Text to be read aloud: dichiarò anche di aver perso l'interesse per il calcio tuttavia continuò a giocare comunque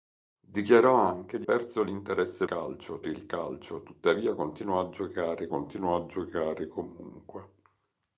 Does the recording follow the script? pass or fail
fail